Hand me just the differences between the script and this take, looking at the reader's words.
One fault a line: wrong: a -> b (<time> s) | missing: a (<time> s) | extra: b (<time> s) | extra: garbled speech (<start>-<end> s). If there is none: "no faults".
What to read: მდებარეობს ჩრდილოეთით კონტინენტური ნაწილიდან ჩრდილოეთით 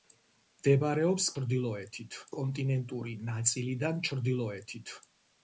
no faults